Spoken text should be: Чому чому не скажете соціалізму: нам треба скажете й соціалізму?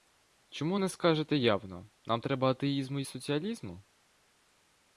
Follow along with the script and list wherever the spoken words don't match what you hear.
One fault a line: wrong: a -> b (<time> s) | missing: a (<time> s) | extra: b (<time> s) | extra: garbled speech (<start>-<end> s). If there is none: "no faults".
missing: чому (0.8 s)
wrong: соціалізму -> явно (1.4 s)
wrong: скажете -> атеїзму (2.5 s)